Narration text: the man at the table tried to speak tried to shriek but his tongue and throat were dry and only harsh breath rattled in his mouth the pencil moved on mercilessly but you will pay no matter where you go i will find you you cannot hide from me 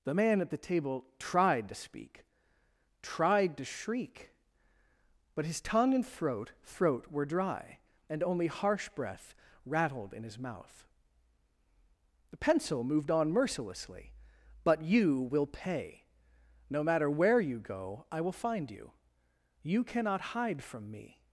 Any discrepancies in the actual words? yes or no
yes